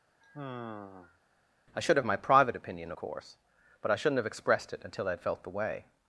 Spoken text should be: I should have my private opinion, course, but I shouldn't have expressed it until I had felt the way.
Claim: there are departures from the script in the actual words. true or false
false